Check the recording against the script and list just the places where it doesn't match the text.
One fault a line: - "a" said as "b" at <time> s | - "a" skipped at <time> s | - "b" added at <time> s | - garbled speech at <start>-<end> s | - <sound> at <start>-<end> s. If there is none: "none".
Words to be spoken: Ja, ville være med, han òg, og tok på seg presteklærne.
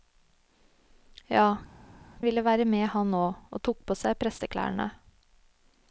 none